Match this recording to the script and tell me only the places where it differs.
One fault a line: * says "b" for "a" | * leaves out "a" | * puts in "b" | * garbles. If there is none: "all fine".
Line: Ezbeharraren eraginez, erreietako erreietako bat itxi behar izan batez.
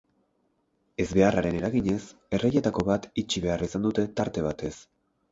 * leaves out "erreietako"
* puts in "dute tarte"